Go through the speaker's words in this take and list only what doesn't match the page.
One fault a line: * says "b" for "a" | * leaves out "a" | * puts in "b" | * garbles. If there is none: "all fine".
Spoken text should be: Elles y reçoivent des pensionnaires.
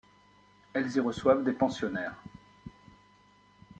all fine